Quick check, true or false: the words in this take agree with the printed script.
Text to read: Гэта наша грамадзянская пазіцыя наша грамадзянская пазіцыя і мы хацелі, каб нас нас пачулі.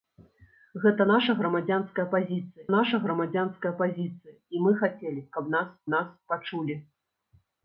true